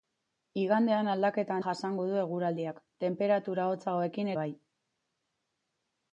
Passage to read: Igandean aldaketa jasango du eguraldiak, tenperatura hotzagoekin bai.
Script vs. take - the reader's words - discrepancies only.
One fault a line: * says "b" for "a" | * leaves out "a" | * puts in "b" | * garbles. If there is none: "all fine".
all fine